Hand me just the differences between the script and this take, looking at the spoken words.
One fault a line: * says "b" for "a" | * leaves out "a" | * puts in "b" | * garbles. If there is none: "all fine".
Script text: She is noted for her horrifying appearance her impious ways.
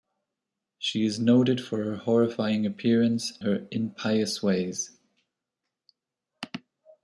all fine